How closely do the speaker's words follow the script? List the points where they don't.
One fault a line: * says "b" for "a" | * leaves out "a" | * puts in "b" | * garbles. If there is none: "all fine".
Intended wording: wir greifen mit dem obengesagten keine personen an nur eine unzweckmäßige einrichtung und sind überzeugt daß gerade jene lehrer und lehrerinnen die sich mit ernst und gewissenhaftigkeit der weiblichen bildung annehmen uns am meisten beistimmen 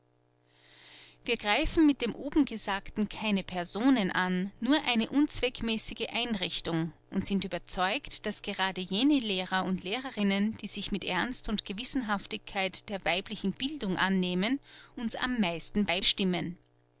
all fine